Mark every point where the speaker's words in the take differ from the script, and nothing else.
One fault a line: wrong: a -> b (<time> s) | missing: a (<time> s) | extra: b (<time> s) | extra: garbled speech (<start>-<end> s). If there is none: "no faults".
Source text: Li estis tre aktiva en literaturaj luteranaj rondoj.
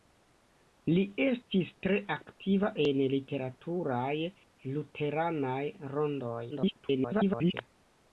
extra: garbled speech (6.5-7.5 s)